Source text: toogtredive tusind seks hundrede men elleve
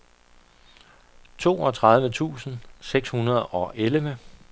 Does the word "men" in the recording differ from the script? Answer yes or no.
yes